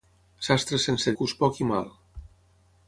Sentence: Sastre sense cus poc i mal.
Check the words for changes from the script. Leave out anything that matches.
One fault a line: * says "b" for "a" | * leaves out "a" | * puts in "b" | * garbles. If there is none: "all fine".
all fine